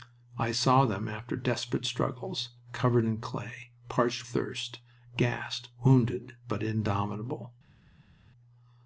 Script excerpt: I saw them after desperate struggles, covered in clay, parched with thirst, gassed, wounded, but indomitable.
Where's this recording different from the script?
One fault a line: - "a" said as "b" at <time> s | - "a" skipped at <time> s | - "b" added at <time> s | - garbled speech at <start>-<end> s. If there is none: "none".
- "with" skipped at 4.3 s